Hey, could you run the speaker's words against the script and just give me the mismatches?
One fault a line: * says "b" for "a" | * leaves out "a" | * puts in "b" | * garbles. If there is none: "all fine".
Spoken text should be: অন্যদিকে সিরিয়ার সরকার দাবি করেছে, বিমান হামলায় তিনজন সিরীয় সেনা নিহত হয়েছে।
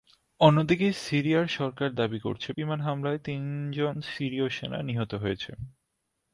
all fine